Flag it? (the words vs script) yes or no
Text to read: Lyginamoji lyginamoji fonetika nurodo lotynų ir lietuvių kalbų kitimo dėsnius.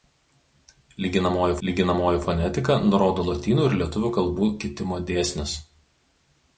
no